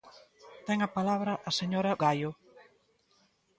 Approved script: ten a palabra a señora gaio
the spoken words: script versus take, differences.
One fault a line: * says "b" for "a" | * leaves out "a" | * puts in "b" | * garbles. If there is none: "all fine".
all fine